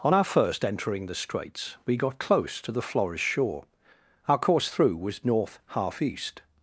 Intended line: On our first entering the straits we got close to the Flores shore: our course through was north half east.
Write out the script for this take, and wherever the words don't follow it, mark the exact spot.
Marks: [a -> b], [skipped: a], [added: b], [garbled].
On our first entering the straits we got close to the Flores shore: our course through was north half east.